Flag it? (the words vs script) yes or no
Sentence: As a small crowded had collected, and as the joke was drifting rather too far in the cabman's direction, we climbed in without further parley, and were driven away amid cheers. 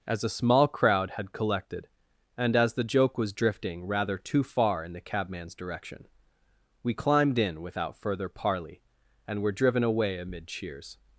yes